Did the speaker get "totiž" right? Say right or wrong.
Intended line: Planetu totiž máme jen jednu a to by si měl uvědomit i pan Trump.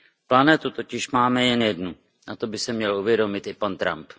right